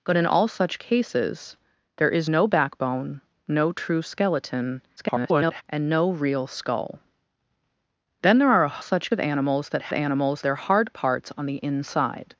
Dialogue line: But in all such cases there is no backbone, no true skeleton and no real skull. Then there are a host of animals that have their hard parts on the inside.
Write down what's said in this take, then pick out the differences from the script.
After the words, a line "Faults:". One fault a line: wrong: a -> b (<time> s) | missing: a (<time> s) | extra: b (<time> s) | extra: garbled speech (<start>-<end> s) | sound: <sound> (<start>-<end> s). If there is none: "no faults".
But in all such cases there is no backbone, no true skeleton [garbled] and no real skull. Then there are a such of animals that animals their hard parts on the inside.
Faults:
extra: garbled speech (5.0-5.6 s)
wrong: host -> such (8.8 s)
wrong: have -> animals (9.9 s)